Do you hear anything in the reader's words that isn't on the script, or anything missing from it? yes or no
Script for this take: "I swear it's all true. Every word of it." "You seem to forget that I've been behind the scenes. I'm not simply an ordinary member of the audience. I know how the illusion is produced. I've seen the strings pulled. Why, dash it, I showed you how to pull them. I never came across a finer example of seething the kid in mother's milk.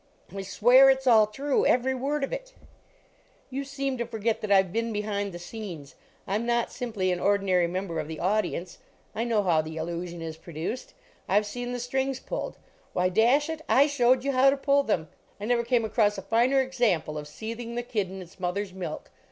yes